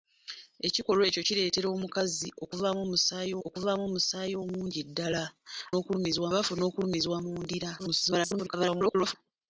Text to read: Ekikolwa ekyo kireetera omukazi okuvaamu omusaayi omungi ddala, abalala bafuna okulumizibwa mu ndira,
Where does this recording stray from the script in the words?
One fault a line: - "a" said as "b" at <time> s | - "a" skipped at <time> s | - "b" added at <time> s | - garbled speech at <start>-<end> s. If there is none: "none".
- "okuvaamu omusaayi" added at 3.5 s
- "abalala" said as "okulumizibwa" at 5.8 s
- garbled speech at 7.8-9.2 s